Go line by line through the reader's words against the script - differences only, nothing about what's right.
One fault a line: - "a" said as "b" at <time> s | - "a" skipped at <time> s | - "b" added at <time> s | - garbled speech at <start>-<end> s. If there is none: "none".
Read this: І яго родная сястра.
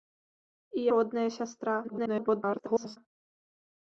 - "яго" skipped at 0.8 s
- garbled speech at 1.8-3.0 s